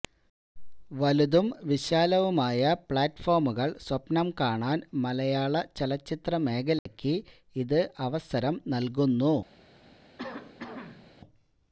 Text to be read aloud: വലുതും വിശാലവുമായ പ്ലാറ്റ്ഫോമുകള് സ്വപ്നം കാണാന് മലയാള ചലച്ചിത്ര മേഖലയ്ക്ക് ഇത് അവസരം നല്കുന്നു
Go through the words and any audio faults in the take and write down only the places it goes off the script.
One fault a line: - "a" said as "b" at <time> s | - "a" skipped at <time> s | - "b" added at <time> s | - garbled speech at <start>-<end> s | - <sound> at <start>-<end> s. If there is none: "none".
- dropout at 6.8-6.9 s
- cough at 10.2-11.1 s